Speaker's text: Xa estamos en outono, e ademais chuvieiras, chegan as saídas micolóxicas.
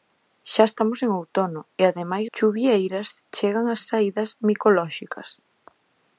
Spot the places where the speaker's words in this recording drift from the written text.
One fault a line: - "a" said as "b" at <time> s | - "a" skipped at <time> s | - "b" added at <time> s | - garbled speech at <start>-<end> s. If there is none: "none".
none